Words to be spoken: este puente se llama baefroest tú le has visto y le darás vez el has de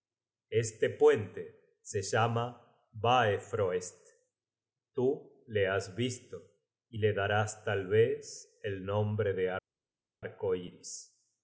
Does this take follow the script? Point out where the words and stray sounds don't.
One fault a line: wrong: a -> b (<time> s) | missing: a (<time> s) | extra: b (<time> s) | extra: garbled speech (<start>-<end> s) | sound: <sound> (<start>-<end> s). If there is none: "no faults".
extra: tal (7.6 s)
wrong: has -> nombre (8.8 s)